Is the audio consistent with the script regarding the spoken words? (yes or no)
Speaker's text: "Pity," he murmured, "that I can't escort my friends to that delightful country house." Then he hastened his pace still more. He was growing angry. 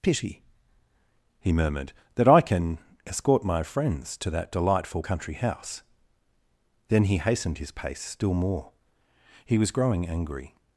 no